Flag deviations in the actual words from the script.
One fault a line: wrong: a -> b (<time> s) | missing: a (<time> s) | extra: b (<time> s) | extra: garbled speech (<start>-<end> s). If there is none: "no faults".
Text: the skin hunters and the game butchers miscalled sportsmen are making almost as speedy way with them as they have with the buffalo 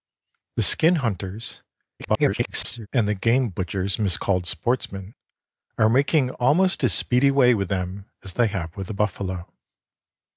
extra: garbled speech (2.0-2.9 s)